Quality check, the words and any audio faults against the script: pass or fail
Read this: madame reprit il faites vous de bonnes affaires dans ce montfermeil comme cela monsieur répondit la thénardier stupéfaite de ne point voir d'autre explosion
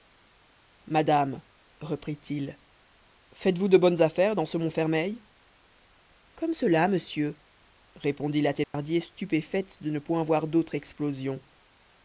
fail